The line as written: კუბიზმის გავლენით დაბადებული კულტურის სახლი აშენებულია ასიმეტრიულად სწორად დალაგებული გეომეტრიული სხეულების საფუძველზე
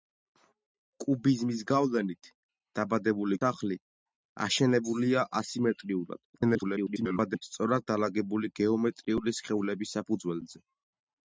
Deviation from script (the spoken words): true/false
true